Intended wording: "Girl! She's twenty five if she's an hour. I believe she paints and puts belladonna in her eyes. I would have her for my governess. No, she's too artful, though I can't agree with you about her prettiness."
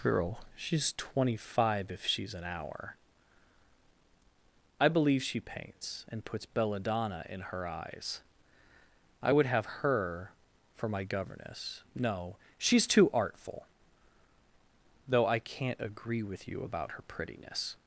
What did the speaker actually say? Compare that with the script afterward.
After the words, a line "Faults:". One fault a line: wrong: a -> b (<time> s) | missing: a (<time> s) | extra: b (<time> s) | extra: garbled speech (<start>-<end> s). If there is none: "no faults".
"Girl! She's twenty five if she's an hour. I believe she paints and puts belladonna in her eyes. I would have her for my governess. No, she's too artful, though I can't agree with you about her prettiness."
Faults:
no faults